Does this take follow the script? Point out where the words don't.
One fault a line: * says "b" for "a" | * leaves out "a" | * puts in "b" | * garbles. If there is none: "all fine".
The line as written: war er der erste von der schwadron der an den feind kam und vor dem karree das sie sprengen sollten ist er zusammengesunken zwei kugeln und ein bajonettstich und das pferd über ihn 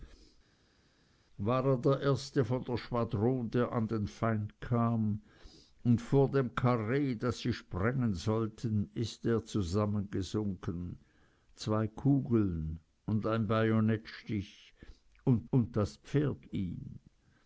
* puts in "und"
* leaves out "über"